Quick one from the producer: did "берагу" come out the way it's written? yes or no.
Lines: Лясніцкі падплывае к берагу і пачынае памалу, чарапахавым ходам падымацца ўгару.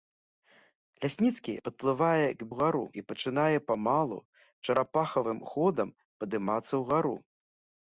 no